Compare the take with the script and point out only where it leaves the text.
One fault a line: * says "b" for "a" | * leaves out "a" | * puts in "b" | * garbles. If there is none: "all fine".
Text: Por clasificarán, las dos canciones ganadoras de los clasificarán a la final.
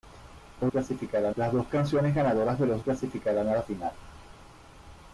all fine